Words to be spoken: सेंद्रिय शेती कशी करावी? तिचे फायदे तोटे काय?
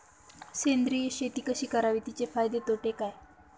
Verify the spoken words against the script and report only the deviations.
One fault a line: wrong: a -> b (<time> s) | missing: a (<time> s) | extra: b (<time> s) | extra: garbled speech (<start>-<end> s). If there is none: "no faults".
no faults